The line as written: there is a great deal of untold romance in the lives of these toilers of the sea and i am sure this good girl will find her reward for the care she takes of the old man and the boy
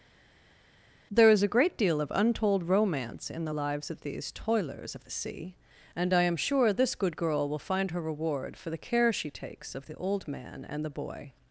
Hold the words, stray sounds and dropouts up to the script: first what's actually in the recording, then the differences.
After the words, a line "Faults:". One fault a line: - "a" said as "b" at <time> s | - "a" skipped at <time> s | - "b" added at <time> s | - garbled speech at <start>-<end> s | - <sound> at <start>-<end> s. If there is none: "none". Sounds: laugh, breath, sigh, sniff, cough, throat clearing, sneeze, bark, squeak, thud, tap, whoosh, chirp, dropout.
there is a great deal of untold romance in the lives of these toilers of the sea and i am sure this good girl will find her reward for the care she takes of the old man and the boy
Faults:
none